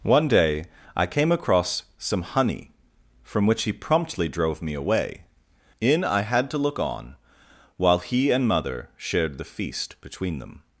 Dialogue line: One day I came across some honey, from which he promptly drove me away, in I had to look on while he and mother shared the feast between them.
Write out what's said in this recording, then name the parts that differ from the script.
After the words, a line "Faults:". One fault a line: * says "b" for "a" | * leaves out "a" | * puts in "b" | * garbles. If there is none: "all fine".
One day I came across some honey, from which he promptly drove me away, in I had to look on while he and mother shared the feast between them.
Faults:
all fine